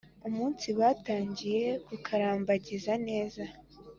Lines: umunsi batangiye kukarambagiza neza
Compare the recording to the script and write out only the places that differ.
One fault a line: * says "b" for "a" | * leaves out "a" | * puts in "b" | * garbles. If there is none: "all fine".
all fine